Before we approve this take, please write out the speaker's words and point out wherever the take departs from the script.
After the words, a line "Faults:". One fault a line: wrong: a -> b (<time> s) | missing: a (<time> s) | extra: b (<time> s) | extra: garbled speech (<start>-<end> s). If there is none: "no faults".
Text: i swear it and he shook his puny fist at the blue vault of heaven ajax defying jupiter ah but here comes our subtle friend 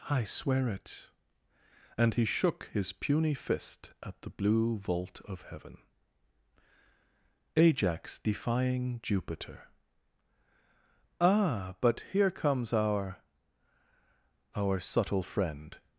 i swear it and he shook his puny fist at the blue vault of heaven ajax defying jupiter ah but here comes our our subtle friend
Faults:
extra: our (14.5 s)